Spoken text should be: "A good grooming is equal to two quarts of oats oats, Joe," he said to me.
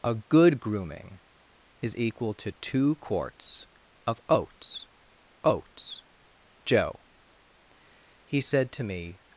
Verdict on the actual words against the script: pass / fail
pass